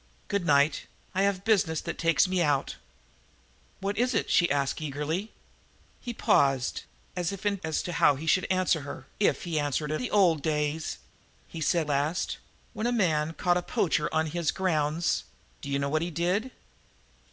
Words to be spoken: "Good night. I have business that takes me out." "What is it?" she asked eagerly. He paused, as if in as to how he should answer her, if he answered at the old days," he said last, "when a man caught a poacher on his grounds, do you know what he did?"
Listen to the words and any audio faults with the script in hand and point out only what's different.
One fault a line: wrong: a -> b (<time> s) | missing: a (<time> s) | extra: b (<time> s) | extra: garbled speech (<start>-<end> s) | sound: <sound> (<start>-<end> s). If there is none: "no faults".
no faults